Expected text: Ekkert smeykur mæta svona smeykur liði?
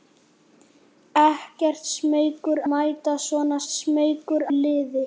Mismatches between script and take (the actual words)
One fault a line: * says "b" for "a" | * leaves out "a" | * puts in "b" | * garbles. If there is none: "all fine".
all fine